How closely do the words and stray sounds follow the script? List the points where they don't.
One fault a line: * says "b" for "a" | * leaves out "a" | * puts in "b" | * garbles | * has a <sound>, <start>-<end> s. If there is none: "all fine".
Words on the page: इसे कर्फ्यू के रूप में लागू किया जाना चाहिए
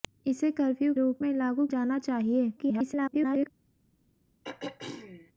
* leaves out "के"
* leaves out "किया"
* garbles
* has a throat clearing, 4.4-5.3 s